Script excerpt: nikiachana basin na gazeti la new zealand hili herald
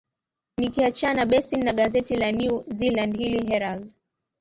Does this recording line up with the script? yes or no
yes